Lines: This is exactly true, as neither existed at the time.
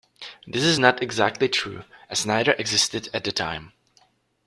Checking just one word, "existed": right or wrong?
right